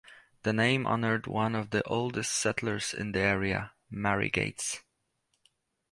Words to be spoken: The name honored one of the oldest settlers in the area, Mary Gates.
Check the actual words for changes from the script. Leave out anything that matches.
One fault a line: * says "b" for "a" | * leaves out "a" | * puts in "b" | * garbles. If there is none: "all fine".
all fine